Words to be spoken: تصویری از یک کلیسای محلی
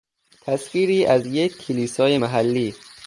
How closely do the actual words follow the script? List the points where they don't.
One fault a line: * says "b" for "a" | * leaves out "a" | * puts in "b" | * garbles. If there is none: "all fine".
all fine